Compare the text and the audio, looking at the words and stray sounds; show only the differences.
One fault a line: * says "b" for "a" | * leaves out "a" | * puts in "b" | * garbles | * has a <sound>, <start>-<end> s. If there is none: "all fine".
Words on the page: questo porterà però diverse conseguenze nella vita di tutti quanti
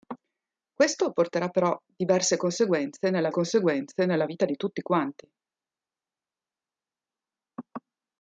* puts in "conseguenze nella"